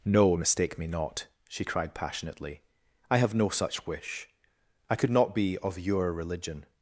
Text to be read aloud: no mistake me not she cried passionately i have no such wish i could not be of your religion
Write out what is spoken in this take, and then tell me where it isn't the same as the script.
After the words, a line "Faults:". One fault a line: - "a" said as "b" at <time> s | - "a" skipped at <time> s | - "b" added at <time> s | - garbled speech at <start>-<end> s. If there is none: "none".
no mistake me not she cried passionately i have no such wish i could not be of your religion
Faults:
none